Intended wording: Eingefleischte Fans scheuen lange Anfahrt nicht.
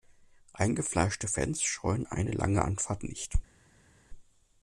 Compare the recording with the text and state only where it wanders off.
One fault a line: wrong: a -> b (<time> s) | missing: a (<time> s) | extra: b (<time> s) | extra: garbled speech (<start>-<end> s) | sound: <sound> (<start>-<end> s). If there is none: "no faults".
extra: eine (2.0 s)